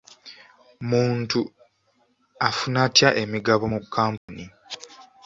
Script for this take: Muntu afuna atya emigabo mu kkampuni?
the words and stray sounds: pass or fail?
fail